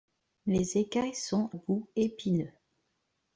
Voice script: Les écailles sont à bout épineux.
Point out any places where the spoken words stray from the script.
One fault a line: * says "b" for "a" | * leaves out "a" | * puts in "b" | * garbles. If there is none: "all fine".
* leaves out "à"